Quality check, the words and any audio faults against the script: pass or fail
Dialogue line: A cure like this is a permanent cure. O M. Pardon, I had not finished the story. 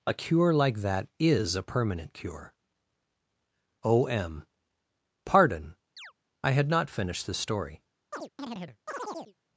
fail